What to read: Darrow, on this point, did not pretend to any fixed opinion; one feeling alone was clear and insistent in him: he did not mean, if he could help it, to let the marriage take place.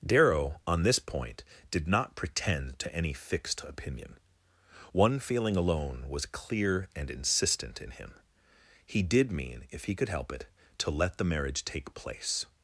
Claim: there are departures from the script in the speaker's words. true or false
true